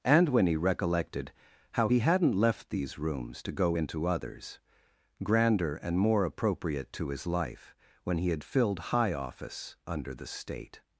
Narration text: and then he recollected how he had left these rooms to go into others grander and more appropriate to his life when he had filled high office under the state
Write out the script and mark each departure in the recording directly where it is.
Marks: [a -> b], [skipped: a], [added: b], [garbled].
and [then -> when] he recollected how he [had -> hadn't] left these rooms to go into others grander and more appropriate to his life when he had filled high office under the state